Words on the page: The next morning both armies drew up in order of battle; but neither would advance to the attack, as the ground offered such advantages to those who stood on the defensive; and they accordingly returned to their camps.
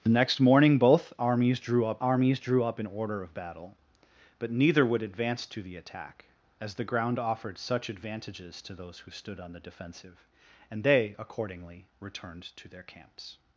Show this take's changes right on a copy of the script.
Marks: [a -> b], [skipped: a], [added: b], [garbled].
The next morning both armies drew up [added: armies drew up] in order of battle; but neither would advance to the attack, as the ground offered such advantages to those who stood on the defensive; and they accordingly returned to their camps.